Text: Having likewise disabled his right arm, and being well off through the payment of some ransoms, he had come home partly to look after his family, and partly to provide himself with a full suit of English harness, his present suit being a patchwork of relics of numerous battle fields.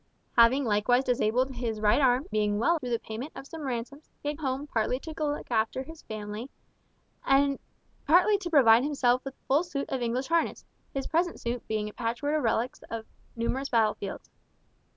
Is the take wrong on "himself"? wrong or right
right